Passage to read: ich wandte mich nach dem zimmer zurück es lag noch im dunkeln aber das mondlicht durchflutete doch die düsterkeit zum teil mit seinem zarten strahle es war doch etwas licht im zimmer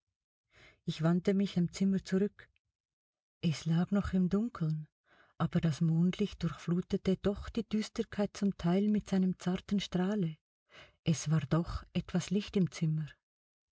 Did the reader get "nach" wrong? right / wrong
wrong